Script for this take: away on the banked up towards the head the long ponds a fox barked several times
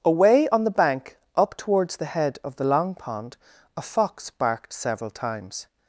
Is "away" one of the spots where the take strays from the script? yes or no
no